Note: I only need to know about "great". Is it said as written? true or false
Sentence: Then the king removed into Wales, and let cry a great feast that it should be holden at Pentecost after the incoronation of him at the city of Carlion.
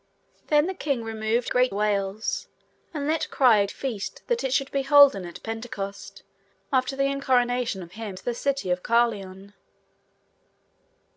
false